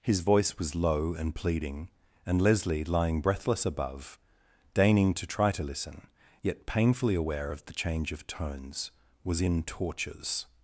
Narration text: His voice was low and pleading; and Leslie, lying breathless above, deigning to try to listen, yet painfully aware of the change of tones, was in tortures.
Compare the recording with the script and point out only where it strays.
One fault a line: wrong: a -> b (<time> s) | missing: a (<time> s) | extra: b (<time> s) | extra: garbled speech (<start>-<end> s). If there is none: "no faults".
no faults